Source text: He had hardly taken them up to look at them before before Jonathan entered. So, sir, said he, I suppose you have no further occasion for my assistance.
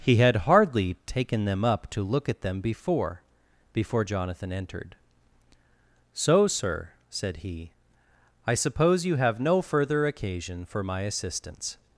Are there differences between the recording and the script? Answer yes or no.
no